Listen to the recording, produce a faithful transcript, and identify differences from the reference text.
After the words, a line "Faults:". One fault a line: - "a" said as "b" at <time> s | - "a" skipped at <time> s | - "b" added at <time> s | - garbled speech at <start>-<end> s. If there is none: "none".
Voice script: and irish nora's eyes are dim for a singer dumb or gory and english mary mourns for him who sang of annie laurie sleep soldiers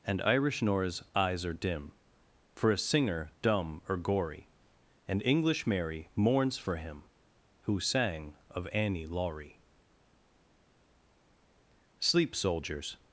and irish nora's eyes are dim for a singer dumb or gory and english mary mourns for him who sang of annie laurie sleep soldiers
Faults:
none